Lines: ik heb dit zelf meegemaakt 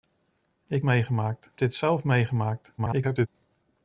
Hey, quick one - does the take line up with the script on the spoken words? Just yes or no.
no